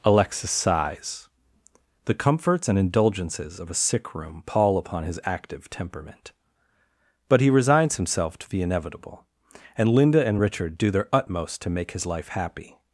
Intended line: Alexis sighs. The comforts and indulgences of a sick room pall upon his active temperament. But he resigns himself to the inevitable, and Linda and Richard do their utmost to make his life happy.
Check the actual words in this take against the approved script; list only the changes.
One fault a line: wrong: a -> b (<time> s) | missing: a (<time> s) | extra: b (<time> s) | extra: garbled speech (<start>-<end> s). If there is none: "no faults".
no faults